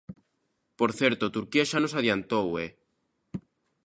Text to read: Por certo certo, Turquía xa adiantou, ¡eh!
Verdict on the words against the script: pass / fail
fail